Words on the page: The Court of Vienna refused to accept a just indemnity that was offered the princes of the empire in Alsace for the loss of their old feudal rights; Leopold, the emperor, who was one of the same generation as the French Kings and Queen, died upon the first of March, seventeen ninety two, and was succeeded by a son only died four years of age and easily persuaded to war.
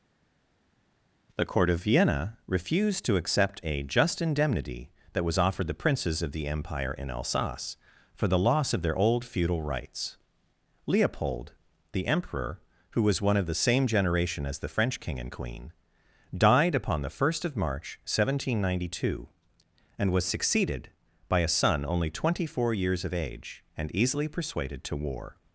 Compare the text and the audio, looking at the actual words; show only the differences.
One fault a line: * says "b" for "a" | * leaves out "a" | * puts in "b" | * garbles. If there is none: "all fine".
* says "King" for "Kings"
* says "twenty" for "died"